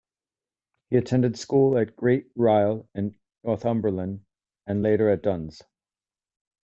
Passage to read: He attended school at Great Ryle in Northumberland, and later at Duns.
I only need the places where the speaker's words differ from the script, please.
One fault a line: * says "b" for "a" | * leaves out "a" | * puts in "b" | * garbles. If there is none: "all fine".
all fine